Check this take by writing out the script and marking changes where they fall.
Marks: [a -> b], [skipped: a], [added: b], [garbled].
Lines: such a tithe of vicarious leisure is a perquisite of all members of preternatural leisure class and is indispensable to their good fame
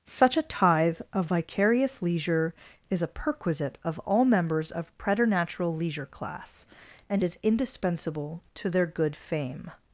such a tithe of vicarious leisure is a perquisite of all members of preternatural leisure class and is indispensable to their good fame